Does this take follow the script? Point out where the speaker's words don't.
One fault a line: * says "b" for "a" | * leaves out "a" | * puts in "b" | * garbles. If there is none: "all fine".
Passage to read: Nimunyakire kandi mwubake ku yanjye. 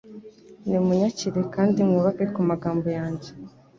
* puts in "magambo"